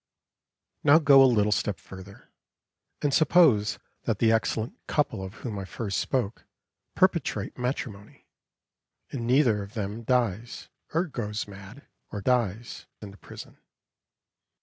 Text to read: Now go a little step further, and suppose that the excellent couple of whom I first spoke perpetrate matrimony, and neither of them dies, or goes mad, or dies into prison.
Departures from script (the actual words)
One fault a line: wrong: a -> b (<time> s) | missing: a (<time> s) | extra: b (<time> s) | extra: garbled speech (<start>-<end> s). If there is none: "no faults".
no faults